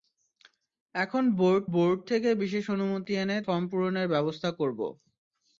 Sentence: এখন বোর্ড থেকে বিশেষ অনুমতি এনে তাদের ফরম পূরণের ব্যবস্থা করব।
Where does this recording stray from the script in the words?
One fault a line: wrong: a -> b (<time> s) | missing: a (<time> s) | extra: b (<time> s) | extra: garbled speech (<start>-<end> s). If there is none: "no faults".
extra: বোর্ড (1.7 s)
missing: তাদের (3.4 s)